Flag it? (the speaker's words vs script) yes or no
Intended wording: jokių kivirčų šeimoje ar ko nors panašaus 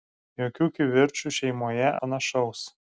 yes